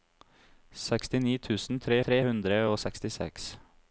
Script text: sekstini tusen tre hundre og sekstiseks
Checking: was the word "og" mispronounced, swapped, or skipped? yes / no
no